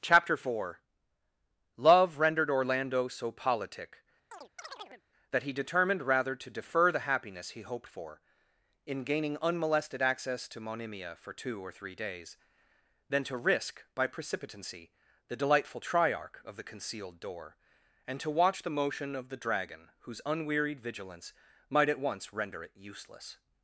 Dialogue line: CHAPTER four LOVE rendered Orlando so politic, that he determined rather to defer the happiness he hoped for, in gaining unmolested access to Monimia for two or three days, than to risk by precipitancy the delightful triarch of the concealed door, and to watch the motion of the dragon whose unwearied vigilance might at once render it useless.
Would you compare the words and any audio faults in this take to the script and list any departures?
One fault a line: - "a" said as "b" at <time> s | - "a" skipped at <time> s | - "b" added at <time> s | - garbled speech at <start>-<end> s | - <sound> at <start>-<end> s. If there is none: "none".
- chirp at 4.3-5.0 s